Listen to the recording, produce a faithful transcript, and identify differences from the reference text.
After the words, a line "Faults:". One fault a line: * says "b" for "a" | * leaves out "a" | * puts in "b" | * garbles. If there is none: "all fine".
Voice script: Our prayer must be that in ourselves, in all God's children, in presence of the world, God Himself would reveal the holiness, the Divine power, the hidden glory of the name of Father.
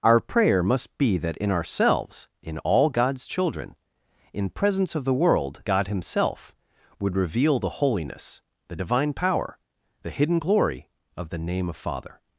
Our prayer must be that in ourselves, in all God's children, in presence of the world, God Himself would reveal the holiness, the Divine power, the hidden glory of the name of Father.
Faults:
all fine